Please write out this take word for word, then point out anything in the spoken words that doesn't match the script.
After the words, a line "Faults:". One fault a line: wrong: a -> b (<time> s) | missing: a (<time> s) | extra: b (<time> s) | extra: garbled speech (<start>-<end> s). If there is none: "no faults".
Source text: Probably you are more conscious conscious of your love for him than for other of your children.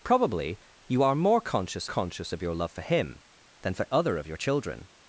Probably you are more conscious conscious of your love for him than for other of your children.
Faults:
no faults